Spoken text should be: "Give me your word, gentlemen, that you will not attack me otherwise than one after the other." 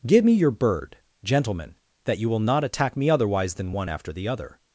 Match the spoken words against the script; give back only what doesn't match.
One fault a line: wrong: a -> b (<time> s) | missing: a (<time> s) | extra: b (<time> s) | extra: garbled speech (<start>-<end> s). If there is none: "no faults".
wrong: word -> bird (0.5 s)